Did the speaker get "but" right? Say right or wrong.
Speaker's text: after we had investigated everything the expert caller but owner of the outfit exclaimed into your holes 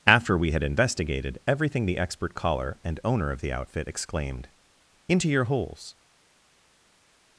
wrong